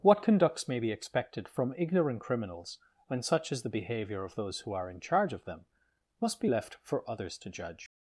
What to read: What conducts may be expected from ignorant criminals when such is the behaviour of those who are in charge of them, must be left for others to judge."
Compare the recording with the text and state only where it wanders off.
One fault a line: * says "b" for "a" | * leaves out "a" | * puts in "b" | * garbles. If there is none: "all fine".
all fine